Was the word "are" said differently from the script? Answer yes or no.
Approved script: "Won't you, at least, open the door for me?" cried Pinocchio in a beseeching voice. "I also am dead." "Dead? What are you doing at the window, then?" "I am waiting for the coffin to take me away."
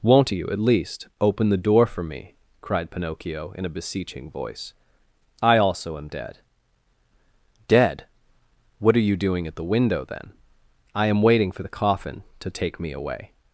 no